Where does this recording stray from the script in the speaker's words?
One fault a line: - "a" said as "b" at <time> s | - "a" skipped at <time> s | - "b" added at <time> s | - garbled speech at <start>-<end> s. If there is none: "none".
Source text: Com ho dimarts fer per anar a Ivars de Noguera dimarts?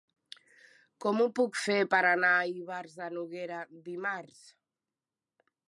- "dimarts" said as "puc" at 1.4 s